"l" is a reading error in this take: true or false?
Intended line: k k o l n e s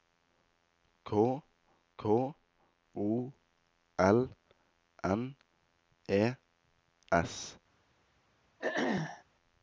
false